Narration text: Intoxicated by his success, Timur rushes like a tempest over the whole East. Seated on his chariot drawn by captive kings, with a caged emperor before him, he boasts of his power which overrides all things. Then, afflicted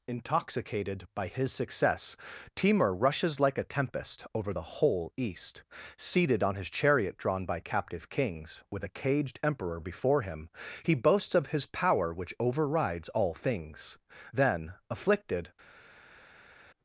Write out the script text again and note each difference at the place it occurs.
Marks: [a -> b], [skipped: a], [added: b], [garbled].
Intoxicated by his success, Timur rushes like a tempest over the whole East. Seated on his chariot drawn by captive kings, with a caged emperor before him, he boasts of his power which overrides all things. Then, afflicted